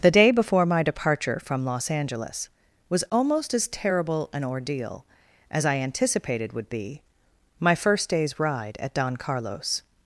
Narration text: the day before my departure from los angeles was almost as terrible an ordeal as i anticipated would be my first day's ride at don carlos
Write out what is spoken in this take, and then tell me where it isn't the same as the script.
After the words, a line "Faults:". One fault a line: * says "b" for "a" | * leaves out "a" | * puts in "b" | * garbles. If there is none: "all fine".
the day before my departure from los angeles was almost as terrible an ordeal as i anticipated would be my first day's ride at don carlos
Faults:
all fine